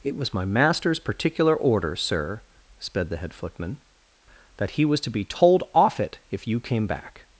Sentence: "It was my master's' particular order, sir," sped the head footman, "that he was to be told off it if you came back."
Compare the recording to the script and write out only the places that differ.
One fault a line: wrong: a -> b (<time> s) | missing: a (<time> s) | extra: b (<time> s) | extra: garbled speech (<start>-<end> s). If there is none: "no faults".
no faults